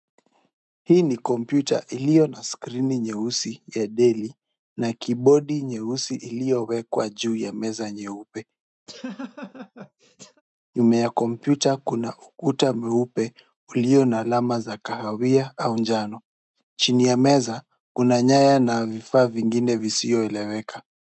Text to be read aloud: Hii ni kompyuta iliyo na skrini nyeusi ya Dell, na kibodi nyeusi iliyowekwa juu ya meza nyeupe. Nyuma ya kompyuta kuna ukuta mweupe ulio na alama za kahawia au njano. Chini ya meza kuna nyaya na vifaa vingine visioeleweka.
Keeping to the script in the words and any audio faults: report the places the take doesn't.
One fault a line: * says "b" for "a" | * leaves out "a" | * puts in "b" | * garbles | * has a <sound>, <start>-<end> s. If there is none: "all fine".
* has a laugh, 8.9-10.4 s